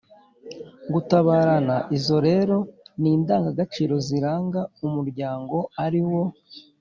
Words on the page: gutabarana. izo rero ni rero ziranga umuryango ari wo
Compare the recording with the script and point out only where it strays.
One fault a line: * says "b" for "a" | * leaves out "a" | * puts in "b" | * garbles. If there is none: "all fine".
* says "indangagaciro" for "rero"